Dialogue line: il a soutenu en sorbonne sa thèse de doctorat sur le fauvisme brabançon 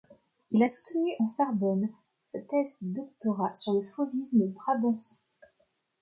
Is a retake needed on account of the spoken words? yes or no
no